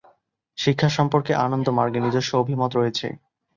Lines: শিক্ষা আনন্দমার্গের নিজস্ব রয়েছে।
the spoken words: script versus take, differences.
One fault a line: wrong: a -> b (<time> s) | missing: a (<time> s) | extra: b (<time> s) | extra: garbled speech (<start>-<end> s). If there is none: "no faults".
extra: সম্পর্কে (1.0 s)
extra: অভিমত (2.4 s)